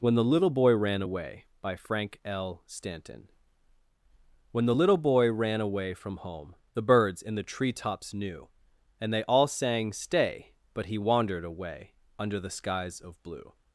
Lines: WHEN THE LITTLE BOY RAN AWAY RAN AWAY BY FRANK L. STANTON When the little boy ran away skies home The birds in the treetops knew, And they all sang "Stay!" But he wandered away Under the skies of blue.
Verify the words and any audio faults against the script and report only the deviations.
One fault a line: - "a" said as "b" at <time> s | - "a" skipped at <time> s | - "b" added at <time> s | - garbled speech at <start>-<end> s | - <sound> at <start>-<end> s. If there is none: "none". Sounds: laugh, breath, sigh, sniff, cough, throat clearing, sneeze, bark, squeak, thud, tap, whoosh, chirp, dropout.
- "RAN AWAY" skipped at 1.4 s
- "skies" said as "from" at 5.9 s